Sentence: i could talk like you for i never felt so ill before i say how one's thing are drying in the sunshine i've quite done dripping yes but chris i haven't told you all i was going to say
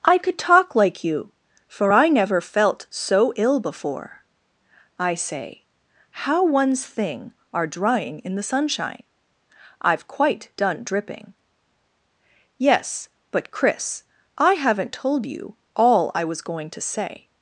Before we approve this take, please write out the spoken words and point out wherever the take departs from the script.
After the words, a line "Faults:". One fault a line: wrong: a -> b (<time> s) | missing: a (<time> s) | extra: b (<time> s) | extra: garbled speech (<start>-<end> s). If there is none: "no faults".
i could talk like you for i never felt so ill before i say how one's thing are drying in the sunshine i've quite done dripping yes but chris i haven't told you all i was going to say
Faults:
no faults